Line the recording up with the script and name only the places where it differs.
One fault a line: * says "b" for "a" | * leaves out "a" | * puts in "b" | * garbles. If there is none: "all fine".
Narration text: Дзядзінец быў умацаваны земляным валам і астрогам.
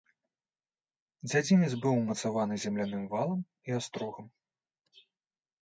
all fine